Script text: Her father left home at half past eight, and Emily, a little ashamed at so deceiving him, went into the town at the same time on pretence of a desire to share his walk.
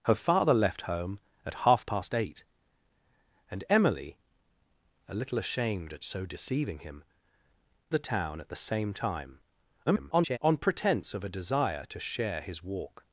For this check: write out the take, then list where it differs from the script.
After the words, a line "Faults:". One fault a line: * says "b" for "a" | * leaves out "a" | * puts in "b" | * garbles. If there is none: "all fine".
Her father left home at half past eight, and Emily, a little ashamed at so deceiving him, the town at the same time [garbled] on pretence of a desire to share his walk.
Faults:
* leaves out "went into"
* garbles